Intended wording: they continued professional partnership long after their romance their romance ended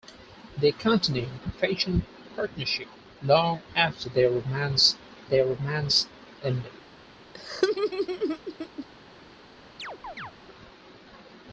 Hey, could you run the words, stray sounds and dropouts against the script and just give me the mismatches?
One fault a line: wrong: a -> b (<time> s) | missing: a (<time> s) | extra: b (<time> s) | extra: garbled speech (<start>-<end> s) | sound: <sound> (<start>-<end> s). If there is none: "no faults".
sound: laugh (7.3-8.9 s)
sound: chirp (9.8-10.3 s)